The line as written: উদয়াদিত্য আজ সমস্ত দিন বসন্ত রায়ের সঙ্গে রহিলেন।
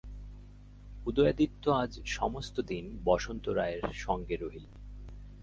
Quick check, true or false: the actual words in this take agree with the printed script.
true